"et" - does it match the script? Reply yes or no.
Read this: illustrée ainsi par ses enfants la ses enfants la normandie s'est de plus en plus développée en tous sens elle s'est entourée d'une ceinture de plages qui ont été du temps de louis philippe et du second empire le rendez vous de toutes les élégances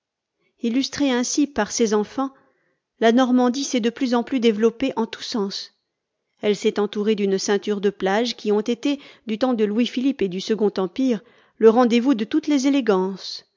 yes